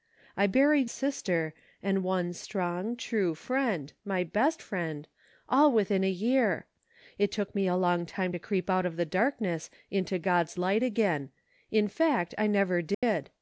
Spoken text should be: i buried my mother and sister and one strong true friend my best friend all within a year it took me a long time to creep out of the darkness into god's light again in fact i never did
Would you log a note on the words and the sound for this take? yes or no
yes